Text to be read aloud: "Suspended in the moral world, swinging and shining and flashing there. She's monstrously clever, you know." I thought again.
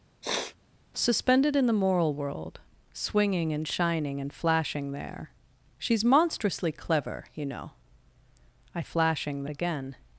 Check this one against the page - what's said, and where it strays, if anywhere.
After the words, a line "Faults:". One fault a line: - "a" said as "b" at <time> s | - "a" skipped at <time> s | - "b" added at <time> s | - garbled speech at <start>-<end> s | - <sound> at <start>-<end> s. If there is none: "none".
"Suspended in the moral world, swinging and shining and flashing there. She's monstrously clever, you know." I flashing again.
Faults:
- sniff at 0.2-0.6 s
- "thought" said as "flashing" at 8.8 s